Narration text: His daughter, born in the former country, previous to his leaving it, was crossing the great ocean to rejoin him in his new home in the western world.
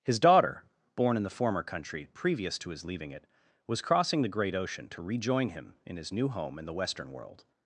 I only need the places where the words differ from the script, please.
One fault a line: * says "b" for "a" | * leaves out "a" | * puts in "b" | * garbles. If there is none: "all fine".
all fine